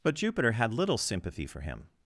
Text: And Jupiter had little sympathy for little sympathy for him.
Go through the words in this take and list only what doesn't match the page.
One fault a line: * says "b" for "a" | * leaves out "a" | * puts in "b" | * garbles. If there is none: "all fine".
* says "But" for "And"
* leaves out "little sympathy for"